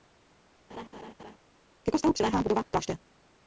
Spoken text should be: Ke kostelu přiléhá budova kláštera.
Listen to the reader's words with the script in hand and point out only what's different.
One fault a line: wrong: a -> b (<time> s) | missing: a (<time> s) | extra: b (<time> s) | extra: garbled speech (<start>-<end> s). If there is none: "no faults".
no faults